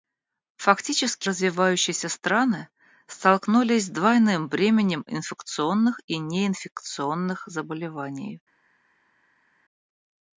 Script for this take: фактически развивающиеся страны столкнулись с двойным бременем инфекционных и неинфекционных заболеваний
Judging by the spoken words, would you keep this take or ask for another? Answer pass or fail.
pass